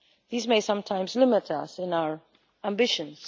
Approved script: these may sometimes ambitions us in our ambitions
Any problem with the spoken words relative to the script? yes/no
yes